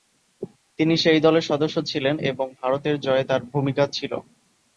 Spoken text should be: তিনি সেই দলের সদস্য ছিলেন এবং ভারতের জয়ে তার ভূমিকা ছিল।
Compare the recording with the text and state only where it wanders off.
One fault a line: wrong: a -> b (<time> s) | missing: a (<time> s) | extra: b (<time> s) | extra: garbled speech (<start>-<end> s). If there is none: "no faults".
no faults